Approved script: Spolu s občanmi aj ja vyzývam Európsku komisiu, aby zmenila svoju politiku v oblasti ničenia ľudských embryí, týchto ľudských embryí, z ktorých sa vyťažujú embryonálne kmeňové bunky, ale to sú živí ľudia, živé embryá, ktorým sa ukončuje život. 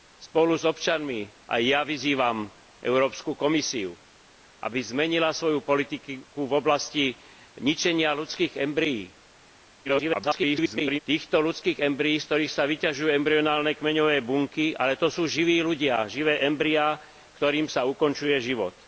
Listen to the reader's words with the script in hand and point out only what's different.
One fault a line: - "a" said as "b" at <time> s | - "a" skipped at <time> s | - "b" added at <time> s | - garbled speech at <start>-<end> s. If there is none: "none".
- garbled speech at 9.8-11.0 s